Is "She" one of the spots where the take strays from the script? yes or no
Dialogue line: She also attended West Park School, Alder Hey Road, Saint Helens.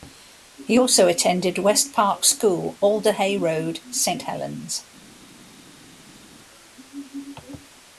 yes